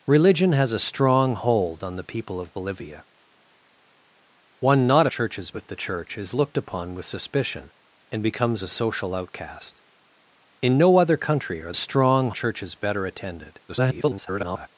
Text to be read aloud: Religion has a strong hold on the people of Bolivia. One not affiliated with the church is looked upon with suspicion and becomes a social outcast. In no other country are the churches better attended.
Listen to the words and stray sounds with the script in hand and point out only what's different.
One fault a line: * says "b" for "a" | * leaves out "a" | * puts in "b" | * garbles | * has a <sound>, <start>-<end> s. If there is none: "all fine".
* says "churches" for "affiliated"
* says "strong" for "the"
* garbles